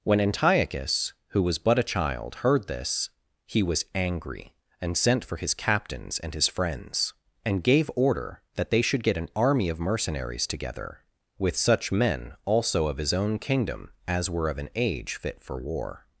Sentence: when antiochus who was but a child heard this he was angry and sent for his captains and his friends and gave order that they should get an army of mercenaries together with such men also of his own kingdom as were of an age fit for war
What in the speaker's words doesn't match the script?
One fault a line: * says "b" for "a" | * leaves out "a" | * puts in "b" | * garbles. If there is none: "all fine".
all fine